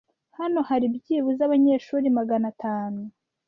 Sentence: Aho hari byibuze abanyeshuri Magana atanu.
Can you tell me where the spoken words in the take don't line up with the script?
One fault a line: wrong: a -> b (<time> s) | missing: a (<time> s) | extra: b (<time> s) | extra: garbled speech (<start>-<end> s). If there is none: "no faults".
wrong: Aho -> Hano (0.4 s)